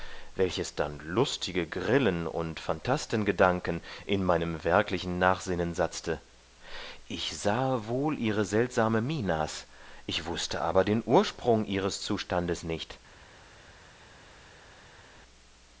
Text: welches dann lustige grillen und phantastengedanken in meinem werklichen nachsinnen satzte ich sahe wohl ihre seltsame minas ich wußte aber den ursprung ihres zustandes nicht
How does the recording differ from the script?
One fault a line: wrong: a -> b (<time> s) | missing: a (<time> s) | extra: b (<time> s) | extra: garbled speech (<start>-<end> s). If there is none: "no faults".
no faults